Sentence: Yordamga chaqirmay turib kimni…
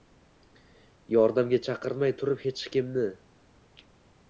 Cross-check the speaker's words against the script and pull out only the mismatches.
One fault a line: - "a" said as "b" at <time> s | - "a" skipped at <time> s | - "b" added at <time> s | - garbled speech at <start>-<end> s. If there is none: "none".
- "hech" added at 2.5 s